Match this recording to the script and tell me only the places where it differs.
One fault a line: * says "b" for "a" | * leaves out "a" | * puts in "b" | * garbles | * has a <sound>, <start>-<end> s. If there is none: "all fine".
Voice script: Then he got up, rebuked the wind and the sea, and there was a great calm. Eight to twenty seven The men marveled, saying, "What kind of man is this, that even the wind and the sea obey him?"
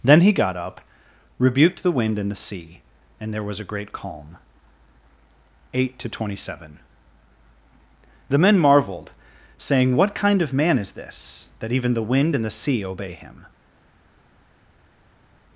all fine